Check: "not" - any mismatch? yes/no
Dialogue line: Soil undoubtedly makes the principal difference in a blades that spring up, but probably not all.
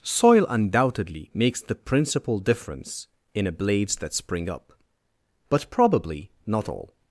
no